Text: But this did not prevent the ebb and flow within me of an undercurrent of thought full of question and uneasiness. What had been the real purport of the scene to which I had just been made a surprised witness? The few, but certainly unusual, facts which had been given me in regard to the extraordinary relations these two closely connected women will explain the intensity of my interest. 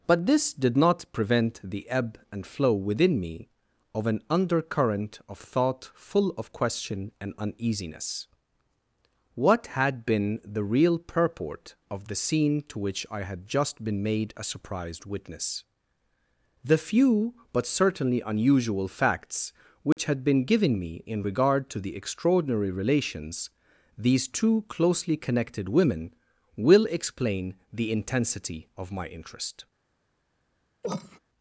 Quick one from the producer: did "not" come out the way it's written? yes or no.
yes